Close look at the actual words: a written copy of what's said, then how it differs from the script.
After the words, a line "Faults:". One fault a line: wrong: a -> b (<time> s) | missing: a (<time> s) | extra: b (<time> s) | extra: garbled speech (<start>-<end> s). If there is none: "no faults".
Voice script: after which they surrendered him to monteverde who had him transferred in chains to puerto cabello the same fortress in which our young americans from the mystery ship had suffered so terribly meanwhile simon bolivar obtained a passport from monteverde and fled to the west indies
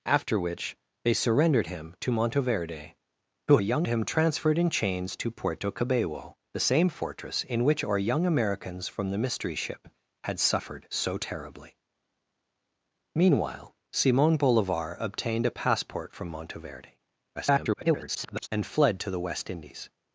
after which they surrendered him to monteverde who young him transferred in chains to puerto cabello the same fortress in which our young americans from the mystery ship had suffered so terribly meanwhile simon bolivar obtained a passport from monteverde [garbled] and fled to the west indies
Faults:
wrong: had -> young (3.6 s)
extra: garbled speech (17.3-18.5 s)